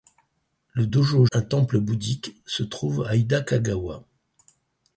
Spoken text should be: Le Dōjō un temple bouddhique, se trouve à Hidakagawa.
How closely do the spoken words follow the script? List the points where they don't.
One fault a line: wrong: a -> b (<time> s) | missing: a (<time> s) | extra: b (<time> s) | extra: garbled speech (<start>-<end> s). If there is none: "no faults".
no faults